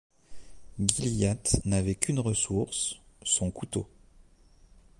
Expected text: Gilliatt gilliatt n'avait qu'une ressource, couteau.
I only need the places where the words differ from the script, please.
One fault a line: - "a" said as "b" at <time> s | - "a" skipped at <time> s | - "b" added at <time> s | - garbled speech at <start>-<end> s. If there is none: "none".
- "gilliatt" skipped at 1.6 s
- "son" added at 3.2 s